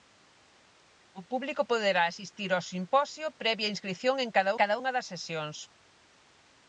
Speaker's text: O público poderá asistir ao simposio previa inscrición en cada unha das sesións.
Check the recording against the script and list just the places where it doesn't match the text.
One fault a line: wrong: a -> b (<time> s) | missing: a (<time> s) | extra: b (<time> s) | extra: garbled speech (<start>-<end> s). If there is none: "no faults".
extra: cada (4.6 s)